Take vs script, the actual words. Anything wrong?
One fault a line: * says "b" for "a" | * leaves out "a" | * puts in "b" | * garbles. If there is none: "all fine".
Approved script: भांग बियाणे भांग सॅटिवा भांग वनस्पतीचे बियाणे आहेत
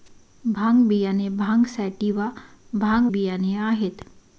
* leaves out "वनस्पतीचे"